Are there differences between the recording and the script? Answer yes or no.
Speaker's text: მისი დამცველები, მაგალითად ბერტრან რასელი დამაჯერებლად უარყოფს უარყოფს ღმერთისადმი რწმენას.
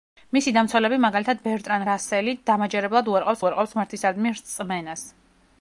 no